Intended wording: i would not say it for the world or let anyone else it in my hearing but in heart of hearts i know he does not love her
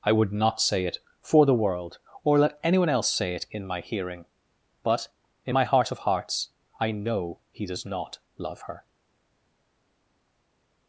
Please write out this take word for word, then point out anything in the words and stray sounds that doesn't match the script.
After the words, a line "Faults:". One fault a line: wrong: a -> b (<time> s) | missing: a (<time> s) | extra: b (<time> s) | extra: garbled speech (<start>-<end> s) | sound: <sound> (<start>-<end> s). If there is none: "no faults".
i would not say it for the world or let anyone else say it in my hearing but in my heart of hearts i know he does not love her
Faults:
extra: say (3.1 s)
extra: my (5.5 s)